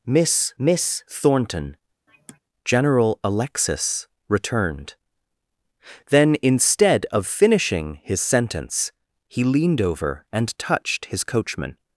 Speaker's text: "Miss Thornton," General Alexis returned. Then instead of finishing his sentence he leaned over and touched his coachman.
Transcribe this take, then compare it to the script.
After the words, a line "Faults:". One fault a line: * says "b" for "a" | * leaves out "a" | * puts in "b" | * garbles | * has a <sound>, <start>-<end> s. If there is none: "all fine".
"Miss miss Thornton," General Alexis returned. Then instead of finishing his sentence he leaned over and touched his coachman.
Faults:
* puts in "miss"
* has a sigh, 2.1-2.4 s